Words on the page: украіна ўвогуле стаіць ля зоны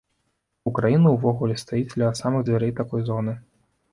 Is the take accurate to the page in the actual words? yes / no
no